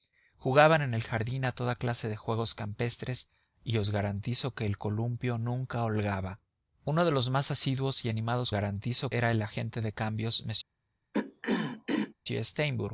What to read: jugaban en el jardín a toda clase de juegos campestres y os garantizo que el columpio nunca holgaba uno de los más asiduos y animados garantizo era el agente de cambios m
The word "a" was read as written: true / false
true